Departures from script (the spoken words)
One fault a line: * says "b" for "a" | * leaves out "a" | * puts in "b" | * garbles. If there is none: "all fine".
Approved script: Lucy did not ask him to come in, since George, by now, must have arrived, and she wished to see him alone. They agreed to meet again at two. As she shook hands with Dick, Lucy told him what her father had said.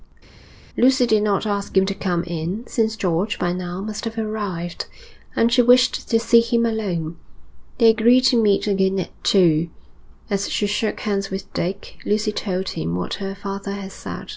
all fine